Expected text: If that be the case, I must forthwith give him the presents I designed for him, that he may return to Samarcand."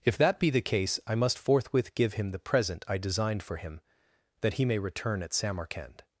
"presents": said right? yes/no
no